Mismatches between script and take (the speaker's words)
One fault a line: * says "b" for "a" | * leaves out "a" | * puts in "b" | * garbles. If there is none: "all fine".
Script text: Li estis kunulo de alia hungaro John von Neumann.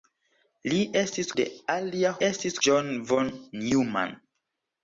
* leaves out "kunulo"
* says "estis" for "hungaro"